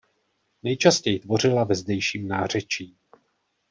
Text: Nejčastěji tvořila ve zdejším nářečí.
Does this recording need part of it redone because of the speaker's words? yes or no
no